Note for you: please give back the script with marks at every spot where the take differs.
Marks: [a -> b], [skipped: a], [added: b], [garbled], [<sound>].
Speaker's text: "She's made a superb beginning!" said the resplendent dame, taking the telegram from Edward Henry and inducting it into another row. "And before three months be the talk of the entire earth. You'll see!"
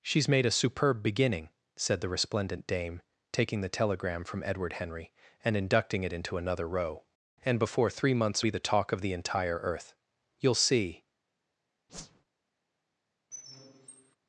"She's made a superb beginning!" said the resplendent dame, taking the telegram from Edward Henry and inducting it into another row. "And before three months be the talk of the entire earth. You'll see!" [whoosh] [squeak]